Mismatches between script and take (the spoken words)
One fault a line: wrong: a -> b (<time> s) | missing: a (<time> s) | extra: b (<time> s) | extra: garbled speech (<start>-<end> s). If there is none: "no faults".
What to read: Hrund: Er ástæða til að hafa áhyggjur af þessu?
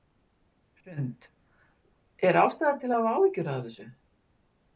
no faults